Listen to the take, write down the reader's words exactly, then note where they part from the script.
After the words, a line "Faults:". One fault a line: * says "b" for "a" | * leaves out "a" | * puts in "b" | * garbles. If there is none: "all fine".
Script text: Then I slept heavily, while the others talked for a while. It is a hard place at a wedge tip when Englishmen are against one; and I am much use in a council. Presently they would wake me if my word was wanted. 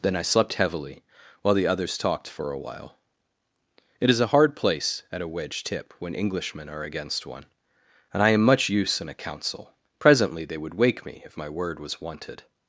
Then I slept heavily, while the others talked for a while. It is a hard place at a wedge tip when Englishmen are against one; and I am much use in a council. Presently they would wake me if my word was wanted.
Faults:
all fine